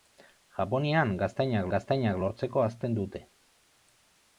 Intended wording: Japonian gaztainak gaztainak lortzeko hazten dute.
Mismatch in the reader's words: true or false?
false